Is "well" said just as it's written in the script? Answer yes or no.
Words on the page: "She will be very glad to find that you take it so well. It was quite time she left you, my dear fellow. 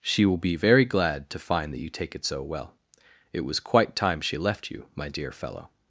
yes